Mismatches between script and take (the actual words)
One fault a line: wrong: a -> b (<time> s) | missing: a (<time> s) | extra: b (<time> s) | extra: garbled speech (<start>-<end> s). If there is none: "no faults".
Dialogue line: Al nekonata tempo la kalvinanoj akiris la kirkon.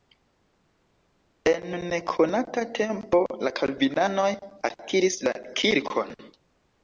wrong: Al -> En (1.5 s)